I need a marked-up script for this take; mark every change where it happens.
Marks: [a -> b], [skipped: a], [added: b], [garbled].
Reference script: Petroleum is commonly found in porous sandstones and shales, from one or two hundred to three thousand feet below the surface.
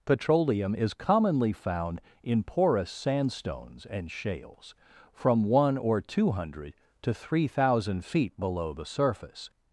Petroleum is commonly found in porous sandstones and shales, from one or two hundred to three thousand feet below the surface.